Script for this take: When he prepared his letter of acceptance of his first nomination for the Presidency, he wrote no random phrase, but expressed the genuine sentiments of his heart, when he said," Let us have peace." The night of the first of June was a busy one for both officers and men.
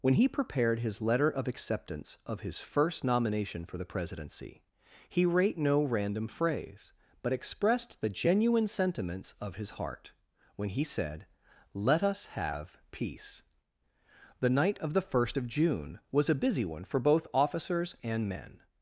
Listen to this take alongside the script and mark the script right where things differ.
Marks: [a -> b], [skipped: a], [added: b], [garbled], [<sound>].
When he prepared his letter of acceptance of his first nomination for the Presidency, he [wrote -> rate] no random phrase, but expressed the genuine sentiments of his heart, when he said," Let us have peace." The night of the first of June was a busy one for both officers and men.